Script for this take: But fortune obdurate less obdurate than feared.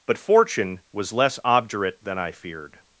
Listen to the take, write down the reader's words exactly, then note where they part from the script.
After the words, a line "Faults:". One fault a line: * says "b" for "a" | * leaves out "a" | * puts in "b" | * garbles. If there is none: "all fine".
But fortune was less obdurate than I feared.
Faults:
* says "was" for "obdurate"
* puts in "I"